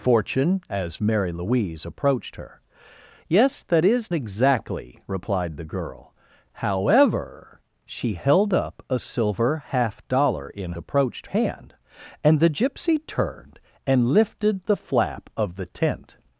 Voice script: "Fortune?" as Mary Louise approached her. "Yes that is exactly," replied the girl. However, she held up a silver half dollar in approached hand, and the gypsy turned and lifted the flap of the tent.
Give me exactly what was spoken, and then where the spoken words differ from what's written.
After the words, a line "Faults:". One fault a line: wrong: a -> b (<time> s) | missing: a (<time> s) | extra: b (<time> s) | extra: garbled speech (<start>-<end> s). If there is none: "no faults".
"Fortune?" as Mary Louise approached her. "Yes that is exactly," replied the girl. However, she held up a silver half dollar in approached hand, and the gypsy turned and lifted the flap of the tent.
Faults:
no faults